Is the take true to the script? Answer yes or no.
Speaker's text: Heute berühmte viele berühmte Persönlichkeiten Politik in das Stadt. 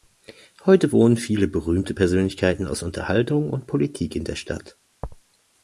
no